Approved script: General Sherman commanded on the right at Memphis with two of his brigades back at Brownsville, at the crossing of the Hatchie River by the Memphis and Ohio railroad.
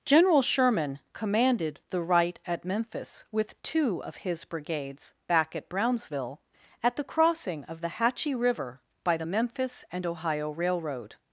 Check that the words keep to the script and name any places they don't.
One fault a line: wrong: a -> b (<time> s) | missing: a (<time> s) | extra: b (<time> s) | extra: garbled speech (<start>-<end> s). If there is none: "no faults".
missing: on (1.8 s)